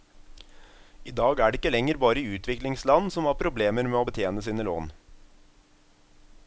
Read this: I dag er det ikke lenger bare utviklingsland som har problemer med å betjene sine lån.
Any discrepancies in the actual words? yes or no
no